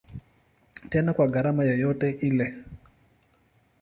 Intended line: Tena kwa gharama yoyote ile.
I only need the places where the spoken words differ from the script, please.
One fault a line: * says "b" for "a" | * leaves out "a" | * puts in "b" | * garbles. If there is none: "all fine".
all fine